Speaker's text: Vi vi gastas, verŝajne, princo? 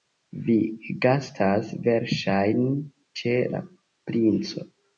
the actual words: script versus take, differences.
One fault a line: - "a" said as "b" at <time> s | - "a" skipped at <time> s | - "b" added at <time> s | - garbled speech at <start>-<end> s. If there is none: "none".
- "vi" skipped at 0.6 s
- "ĉe la" added at 3.2 s